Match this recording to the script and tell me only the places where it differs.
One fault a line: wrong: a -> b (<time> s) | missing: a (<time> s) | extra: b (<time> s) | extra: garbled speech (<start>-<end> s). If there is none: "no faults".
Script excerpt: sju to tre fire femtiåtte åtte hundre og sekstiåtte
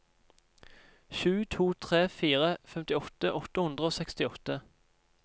no faults